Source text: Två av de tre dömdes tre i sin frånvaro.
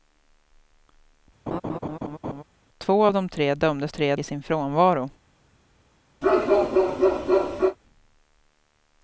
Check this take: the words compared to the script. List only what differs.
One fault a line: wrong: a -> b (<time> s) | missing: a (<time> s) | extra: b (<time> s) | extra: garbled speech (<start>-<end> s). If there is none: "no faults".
no faults